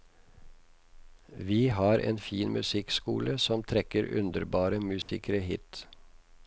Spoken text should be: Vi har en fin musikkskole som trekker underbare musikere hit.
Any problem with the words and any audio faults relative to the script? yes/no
yes